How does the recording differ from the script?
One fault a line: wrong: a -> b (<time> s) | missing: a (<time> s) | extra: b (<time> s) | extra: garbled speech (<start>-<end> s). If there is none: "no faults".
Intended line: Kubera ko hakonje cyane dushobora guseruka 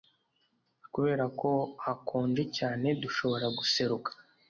no faults